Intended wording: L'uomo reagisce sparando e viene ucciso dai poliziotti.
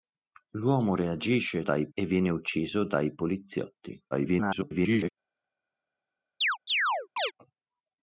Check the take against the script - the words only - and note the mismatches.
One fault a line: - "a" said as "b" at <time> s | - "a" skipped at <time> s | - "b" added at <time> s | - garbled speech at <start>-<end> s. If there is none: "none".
- "sparando" said as "dai" at 1.6 s
- garbled speech at 4.1-5.1 s